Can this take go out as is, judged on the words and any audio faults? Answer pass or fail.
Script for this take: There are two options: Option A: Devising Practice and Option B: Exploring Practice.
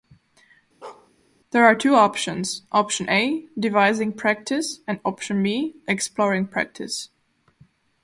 fail